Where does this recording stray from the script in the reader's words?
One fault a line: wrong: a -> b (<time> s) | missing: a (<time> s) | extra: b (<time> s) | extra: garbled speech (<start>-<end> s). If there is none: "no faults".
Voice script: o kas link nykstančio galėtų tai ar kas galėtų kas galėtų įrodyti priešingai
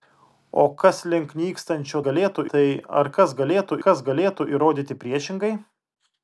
no faults